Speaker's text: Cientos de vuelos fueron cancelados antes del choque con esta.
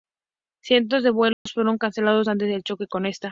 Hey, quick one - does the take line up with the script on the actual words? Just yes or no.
yes